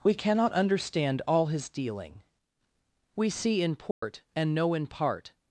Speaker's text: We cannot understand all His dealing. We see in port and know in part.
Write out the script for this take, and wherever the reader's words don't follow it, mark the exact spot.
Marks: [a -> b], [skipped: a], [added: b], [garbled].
We cannot understand all His dealing. We see in port and know in part.